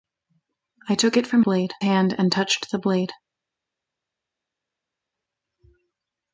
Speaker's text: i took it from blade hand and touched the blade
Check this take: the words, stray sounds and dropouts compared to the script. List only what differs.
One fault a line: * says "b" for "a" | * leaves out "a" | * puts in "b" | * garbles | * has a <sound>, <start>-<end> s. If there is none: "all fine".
all fine